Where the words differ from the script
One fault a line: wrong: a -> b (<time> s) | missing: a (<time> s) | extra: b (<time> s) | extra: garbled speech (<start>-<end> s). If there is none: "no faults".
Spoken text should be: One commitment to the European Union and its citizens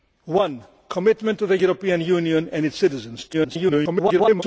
extra: garbled speech (3.3-4.4 s)